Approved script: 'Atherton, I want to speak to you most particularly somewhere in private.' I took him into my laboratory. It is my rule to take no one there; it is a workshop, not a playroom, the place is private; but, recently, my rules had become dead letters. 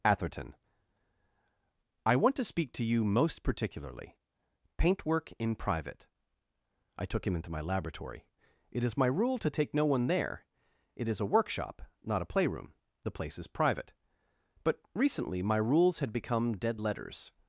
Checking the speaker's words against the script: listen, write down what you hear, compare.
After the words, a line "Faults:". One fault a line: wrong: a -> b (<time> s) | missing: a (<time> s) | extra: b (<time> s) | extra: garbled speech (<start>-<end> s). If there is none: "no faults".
'Atherton, I want to speak to you most particularly paintwork in private.' I took him into my laboratory. It is my rule to take no one there; it is a workshop, not a playroom, the place is private; but, recently, my rules had become dead letters.
Faults:
wrong: somewhere -> paintwork (4.8 s)